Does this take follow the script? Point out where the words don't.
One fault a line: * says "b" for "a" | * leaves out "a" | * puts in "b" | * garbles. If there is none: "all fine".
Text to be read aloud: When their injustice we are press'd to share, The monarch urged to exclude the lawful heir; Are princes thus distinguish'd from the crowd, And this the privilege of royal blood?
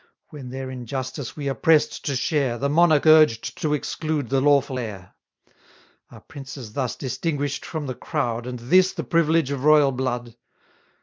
all fine